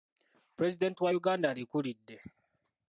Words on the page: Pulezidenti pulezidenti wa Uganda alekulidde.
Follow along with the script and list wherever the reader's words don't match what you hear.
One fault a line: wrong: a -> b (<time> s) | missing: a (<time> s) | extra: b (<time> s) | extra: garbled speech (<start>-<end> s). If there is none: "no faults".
missing: pulezidenti (1.0 s)